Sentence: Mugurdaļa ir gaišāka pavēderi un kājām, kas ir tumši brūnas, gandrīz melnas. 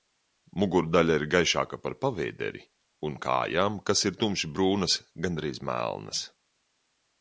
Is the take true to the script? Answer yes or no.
no